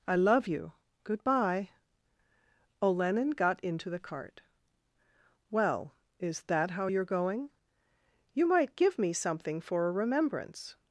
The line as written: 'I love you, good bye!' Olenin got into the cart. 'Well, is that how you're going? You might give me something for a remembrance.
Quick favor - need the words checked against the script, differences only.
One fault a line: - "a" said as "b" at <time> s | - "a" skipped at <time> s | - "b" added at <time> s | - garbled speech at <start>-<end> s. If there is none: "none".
none